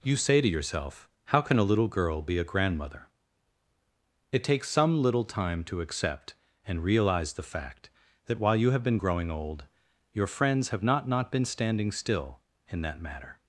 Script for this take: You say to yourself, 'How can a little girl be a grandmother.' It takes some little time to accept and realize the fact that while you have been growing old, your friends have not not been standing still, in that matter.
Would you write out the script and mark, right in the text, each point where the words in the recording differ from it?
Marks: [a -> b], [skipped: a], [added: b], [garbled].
You say to yourself, 'How can a little girl be a grandmother.' It takes some little time to accept and realize the fact that while you have been growing old, your friends have not not been standing still, in that matter.